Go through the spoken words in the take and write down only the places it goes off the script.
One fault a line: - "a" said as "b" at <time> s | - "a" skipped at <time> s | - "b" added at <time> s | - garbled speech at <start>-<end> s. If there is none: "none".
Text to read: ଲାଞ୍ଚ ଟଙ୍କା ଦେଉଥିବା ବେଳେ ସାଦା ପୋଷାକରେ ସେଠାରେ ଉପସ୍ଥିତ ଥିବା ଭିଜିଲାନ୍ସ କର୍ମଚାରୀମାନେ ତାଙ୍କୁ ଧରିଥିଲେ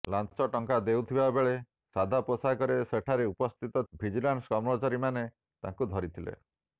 - "ଥିବା" skipped at 3.8 s